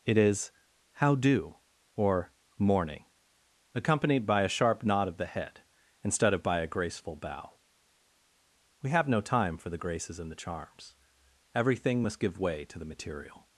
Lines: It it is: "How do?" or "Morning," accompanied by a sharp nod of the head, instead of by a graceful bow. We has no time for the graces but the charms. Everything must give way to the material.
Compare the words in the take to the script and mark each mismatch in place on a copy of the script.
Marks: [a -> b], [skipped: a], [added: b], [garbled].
It [skipped: it] is: "How do?" or "Morning," accompanied by a sharp nod of the head, instead of by a graceful bow. We [has -> have] no time for the graces [but -> and] the charms. Everything must give way to the material.